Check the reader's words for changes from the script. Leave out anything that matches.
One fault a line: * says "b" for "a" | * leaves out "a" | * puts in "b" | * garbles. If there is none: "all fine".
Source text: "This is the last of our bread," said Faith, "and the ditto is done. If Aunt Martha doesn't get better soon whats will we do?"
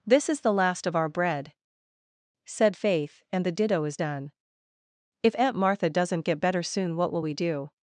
* says "what" for "whats"